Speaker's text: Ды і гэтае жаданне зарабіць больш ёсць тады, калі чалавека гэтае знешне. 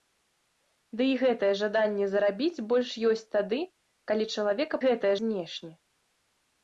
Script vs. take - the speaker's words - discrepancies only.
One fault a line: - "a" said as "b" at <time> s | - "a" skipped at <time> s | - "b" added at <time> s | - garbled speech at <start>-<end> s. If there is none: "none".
none